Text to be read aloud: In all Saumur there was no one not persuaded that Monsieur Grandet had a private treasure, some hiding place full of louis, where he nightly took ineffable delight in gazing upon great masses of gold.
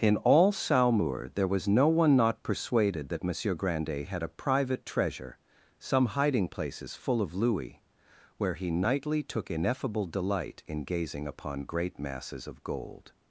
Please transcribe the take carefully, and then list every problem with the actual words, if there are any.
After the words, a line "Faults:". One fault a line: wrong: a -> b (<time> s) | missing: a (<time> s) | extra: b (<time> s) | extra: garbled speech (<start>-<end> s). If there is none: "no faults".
In all Saumur there was no one not persuaded that Monsieur Grandet had a private treasure, some hiding places full of louis, where he nightly took ineffable delight in gazing upon great masses of gold.
Faults:
wrong: place -> places (6.5 s)